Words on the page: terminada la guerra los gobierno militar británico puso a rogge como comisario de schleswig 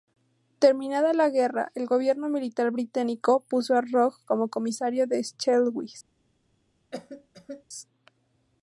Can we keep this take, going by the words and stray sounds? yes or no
no